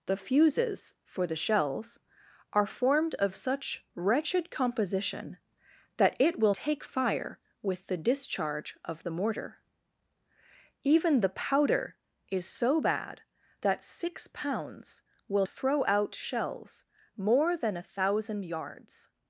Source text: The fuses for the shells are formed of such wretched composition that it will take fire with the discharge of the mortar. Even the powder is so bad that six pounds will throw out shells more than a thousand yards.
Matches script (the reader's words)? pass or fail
pass